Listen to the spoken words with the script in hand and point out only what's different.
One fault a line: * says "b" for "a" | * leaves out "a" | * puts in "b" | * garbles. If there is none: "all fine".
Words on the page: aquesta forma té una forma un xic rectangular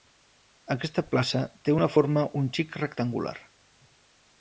* says "plaça" for "forma"